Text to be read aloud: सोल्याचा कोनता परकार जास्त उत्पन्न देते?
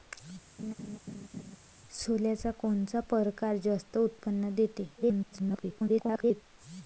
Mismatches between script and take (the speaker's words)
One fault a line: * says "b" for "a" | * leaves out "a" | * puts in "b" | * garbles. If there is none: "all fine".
* garbles